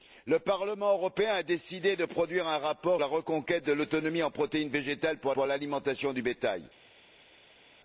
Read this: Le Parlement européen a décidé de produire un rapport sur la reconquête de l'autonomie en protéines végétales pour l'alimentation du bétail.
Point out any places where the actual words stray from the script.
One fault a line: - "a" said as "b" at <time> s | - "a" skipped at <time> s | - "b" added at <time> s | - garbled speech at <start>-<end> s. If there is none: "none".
- "sur" skipped at 3.0 s
- "pour" added at 5.3 s